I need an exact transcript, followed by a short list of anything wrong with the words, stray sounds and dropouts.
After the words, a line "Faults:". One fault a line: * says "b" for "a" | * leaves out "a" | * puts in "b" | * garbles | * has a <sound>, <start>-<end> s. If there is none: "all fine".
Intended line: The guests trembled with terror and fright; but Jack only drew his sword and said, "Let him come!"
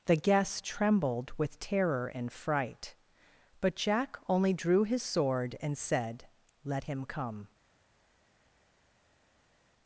The guests trembled with terror and fright; but Jack only drew his sword and said, "Let him come!"
Faults:
all fine